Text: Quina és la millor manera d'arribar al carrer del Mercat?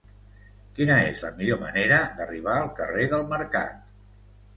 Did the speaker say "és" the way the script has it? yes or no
yes